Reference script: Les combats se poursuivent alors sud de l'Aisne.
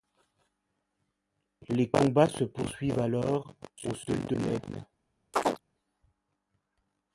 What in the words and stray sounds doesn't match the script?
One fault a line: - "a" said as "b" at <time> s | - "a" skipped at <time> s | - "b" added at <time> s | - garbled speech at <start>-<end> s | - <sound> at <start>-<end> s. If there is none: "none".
- "au" added at 3.8 s
- chirp at 5.3-5.6 s